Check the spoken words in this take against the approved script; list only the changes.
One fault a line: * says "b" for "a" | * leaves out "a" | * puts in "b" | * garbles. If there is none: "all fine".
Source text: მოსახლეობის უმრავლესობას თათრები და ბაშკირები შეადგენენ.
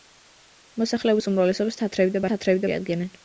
* says "თათრები" for "ბაშკირები"